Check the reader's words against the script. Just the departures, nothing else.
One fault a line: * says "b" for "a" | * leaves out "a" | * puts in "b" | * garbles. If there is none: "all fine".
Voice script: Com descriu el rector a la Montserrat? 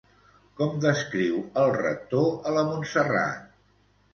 all fine